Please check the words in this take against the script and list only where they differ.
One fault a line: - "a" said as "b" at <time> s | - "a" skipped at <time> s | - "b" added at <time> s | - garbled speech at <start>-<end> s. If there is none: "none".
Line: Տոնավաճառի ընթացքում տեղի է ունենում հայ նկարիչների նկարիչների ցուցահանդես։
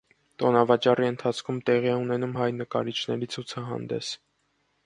- "նկարիչների" skipped at 3.3 s